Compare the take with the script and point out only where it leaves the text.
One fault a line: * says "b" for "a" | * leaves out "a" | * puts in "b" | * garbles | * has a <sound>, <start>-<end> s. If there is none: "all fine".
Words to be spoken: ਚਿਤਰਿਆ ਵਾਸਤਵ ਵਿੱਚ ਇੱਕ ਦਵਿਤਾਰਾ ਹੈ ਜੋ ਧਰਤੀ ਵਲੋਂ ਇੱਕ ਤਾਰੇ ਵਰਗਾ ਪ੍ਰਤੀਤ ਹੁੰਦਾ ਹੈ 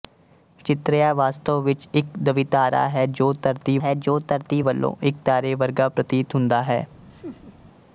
* puts in "ਹੈ ਜੋ ਧਰਤੀ"
* has a laugh, 7.1-7.6 s